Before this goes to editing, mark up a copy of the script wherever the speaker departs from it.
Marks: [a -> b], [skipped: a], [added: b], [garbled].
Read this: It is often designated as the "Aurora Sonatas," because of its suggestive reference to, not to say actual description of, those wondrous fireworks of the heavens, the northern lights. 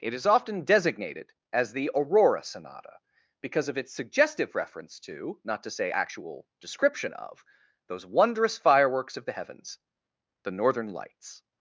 It is often designated as the "Aurora [Sonatas," -> Sonata] because of its suggestive reference to, not to say actual description of, those wondrous fireworks of the heavens, the northern lights.